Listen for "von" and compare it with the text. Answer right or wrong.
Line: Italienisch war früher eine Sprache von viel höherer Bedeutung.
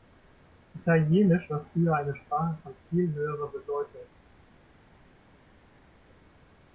right